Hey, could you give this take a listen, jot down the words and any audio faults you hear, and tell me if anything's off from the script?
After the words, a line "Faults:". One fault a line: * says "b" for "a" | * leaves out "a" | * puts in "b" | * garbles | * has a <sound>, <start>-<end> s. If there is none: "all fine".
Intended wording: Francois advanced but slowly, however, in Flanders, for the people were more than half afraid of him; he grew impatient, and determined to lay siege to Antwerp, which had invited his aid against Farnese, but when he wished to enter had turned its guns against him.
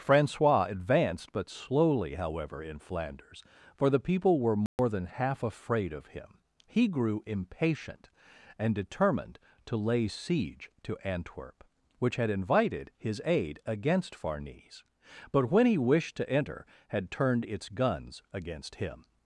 Francois advanced but slowly, however, in Flanders, for the people were more than half afraid of him; he grew impatient, and determined to lay siege to Antwerp, which had invited his aid against Farnese, but when he wished to enter had turned its guns against him.
Faults:
* has a dropout, 4.7-4.8 s